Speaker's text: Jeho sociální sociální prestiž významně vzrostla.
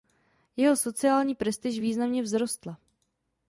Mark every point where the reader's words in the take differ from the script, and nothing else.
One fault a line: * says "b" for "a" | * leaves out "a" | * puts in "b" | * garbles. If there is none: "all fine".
* leaves out "sociální"